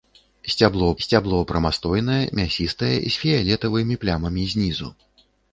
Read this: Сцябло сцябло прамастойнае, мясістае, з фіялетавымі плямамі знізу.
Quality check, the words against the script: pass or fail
pass